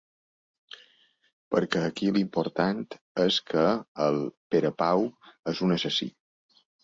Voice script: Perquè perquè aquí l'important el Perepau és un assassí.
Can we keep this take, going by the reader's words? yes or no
no